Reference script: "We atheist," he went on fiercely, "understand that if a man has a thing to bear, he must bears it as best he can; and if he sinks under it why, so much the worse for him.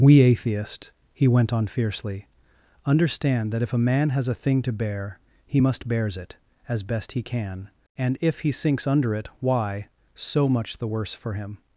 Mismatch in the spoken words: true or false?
false